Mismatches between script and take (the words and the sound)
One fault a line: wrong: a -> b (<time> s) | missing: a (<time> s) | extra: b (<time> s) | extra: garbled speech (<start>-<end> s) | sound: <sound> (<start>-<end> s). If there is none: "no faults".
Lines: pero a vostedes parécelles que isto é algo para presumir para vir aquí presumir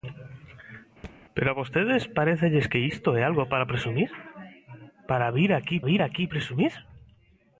sound: thud (1.0-1.2 s)
extra: vir aquí (5.9 s)